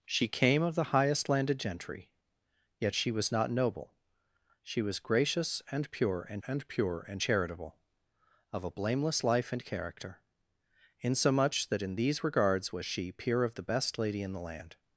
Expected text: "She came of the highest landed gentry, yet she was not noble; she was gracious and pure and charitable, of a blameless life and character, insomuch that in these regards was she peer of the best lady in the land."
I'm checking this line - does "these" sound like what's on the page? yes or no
yes